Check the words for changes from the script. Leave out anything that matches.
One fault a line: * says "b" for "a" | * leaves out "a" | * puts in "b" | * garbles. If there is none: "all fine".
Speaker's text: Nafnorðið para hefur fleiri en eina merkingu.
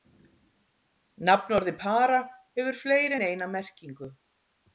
all fine